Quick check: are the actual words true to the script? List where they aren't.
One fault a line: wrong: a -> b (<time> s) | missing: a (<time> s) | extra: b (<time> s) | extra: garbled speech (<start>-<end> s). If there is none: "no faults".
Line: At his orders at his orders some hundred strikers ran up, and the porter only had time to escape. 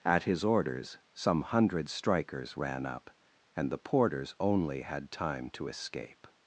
missing: at his orders (1.0 s)
wrong: porter -> porters (3.8 s)